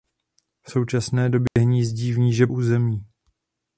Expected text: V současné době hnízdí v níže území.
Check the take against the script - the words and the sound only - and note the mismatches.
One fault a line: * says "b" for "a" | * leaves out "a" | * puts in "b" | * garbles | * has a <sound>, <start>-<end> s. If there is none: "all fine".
* has a dropout, 1.5-1.6 s